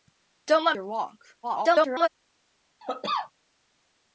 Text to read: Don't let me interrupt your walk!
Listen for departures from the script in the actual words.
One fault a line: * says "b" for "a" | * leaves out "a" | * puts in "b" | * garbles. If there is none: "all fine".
* leaves out "me interrupt"
* garbles